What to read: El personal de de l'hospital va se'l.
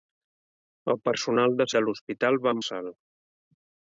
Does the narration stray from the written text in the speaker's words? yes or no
no